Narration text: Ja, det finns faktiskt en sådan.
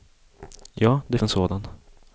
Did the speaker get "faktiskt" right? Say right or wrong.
wrong